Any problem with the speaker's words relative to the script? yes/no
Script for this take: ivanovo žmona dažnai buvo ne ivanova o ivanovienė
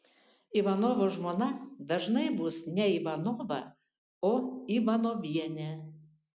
yes